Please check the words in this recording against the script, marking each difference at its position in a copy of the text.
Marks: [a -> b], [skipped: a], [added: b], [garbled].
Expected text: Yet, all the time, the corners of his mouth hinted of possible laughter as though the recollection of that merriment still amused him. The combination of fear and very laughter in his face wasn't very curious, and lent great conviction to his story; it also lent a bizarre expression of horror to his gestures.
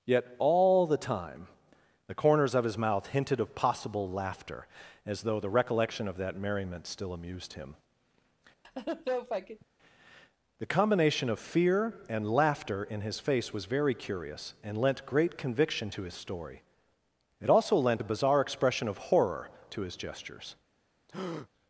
Yet, all the time, the corners of his mouth hinted of possible laughter as though the recollection of that merriment still amused him. The combination of fear and [skipped: very] laughter in his face [wasn't -> was] very curious, and lent great conviction to his story; it also lent a bizarre expression of horror to his gestures.